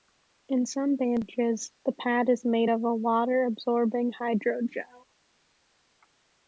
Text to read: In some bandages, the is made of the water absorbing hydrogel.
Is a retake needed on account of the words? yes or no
yes